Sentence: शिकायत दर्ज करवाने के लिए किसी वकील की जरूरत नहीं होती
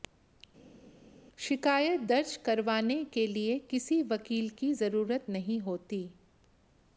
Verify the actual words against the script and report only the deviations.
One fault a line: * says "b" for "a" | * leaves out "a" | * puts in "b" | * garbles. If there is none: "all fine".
all fine